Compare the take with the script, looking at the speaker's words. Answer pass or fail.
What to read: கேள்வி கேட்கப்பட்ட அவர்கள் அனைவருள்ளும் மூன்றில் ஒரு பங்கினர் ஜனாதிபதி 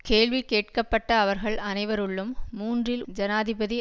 fail